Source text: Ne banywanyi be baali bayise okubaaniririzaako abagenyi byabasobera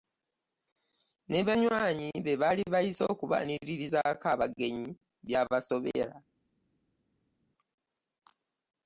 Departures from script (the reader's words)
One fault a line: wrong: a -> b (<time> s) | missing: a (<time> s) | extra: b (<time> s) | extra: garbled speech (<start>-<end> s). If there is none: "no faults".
no faults